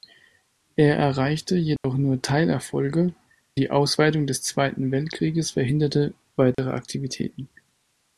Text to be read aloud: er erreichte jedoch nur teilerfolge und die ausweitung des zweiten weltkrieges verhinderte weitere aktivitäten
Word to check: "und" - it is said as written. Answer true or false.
false